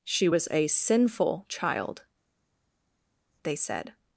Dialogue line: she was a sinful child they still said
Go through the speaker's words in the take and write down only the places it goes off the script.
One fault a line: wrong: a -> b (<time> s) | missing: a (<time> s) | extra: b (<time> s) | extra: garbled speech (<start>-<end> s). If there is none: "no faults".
missing: still (3.6 s)